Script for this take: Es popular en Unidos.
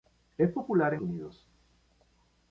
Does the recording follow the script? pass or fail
pass